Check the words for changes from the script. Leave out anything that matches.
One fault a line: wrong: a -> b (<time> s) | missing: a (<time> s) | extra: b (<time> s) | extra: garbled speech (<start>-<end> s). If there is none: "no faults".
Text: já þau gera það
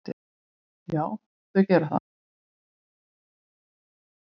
no faults